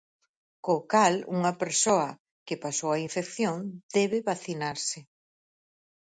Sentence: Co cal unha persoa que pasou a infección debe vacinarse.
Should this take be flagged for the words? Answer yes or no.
no